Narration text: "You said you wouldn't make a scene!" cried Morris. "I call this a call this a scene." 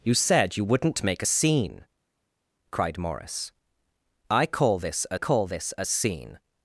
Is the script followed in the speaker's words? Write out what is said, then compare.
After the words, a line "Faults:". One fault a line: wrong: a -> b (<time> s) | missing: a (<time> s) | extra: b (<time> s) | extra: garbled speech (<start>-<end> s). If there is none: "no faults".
"You said you wouldn't make a scene!" cried Morris. "I call this a call this a scene."
Faults:
no faults